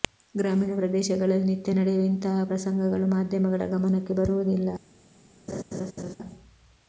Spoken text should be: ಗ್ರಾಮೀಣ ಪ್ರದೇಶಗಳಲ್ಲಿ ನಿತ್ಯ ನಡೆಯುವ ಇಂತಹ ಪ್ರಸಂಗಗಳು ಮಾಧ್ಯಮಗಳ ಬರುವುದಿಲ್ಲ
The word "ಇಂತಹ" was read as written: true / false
true